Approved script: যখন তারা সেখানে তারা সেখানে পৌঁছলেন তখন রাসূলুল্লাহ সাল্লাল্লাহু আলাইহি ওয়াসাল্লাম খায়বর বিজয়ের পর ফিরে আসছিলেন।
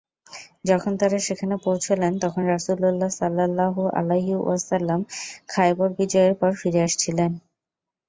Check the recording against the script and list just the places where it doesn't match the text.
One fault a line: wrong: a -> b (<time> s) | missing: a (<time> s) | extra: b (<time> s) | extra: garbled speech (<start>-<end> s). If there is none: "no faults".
missing: তারা সেখানে (1.6 s)